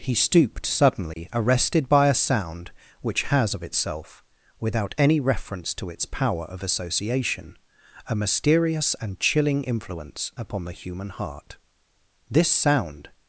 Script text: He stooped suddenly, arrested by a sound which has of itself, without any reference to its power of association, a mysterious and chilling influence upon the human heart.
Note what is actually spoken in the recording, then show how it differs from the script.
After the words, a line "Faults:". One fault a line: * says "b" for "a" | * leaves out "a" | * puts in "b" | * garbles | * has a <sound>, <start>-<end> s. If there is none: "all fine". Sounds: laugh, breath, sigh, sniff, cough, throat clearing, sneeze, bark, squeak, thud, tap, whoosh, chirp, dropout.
He stooped suddenly, arrested by a sound which has of itself, without any reference to its power of association, a mysterious and chilling influence upon the human heart. This sound
Faults:
* has a dropout, 1.1-1.2 s
* puts in "This sound"